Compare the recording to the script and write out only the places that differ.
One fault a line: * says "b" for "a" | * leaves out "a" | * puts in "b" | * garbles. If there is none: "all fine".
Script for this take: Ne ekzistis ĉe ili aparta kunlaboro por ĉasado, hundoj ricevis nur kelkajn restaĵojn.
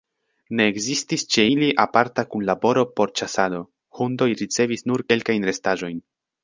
all fine